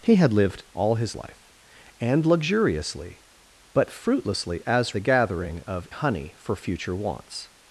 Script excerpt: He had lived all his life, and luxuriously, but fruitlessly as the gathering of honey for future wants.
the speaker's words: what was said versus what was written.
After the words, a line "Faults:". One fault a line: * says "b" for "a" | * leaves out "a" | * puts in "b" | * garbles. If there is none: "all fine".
He had lived all his life, and luxuriously, but fruitlessly as the gathering of honey for future wants.
Faults:
all fine